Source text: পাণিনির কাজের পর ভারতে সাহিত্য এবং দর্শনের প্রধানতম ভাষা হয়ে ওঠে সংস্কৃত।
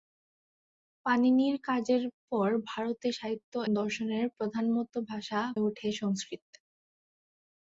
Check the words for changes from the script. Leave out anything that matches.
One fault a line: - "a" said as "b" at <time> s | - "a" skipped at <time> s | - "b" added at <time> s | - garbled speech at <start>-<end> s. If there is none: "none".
- "এবং" skipped at 3.5 s
- "হয়ে" skipped at 5.4 s